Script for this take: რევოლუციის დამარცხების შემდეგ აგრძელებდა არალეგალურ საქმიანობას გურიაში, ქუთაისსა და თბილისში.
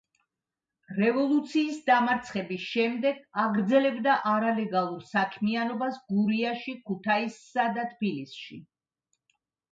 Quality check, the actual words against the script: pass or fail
pass